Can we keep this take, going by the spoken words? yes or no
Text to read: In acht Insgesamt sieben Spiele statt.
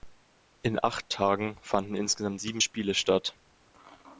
no